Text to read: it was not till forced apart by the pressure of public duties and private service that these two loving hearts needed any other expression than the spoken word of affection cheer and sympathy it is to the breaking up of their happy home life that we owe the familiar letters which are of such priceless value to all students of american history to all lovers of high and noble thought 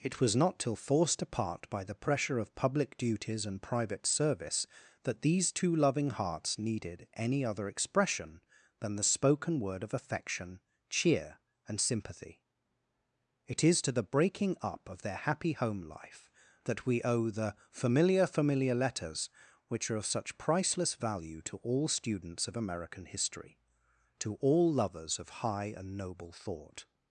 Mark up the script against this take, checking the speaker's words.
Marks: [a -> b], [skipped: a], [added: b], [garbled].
it was not till forced apart by the pressure of public duties and private service that these two loving hearts needed any other expression than the spoken word of affection cheer and sympathy it is to the breaking up of their happy home life that we owe the familiar [added: familiar] letters which are of such priceless value to all students of american history to all lovers of high and noble thought